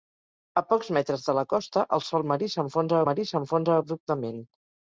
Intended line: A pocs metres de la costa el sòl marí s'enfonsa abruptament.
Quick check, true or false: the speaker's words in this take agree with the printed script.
false